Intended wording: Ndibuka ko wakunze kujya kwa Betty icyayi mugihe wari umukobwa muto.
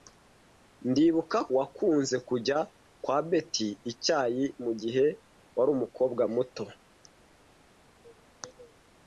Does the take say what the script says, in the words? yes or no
no